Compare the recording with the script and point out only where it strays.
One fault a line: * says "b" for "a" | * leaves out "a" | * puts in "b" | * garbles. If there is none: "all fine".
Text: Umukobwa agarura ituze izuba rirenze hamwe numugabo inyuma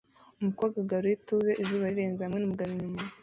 all fine